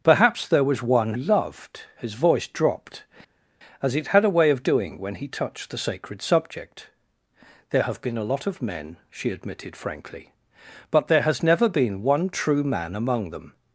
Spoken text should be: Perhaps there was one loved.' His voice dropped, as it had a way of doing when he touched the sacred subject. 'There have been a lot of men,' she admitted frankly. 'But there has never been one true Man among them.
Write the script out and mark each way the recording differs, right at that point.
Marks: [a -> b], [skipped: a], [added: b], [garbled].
Perhaps there was one loved.' His voice dropped, as it had a way of doing when he touched the sacred subject. 'There have been a lot of men,' she admitted frankly. 'But there has never been one true Man among them.